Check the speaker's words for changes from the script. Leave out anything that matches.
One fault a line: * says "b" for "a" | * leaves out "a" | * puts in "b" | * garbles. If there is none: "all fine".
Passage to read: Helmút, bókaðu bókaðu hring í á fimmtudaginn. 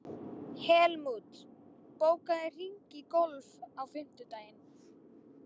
* leaves out "bókaðu"
* puts in "golf"